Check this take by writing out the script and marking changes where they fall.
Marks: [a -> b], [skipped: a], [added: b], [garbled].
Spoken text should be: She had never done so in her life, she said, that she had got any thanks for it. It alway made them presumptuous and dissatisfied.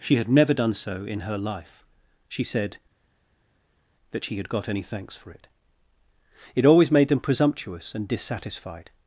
She had never done so in her life, she said, that she had got any thanks for it. It [alway -> always] made them presumptuous and dissatisfied.